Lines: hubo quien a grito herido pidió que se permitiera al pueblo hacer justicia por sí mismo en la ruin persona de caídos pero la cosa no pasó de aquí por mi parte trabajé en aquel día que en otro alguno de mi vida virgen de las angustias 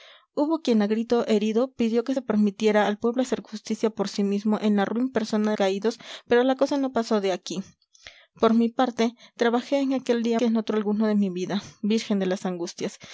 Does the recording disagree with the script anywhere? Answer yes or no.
no